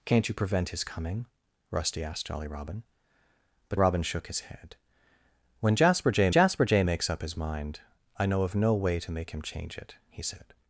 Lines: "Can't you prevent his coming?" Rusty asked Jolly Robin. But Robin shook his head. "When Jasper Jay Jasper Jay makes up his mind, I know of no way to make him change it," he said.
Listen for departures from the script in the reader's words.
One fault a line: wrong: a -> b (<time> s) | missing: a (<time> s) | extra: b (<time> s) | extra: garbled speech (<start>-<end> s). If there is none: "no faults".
no faults